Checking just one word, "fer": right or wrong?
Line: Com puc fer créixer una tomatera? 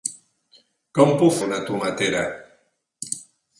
wrong